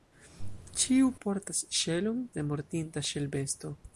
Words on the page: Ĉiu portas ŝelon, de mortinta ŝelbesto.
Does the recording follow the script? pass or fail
pass